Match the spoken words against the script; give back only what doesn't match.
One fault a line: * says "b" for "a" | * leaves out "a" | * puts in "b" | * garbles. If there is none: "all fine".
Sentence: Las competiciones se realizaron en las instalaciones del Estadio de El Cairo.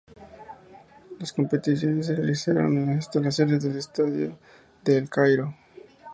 all fine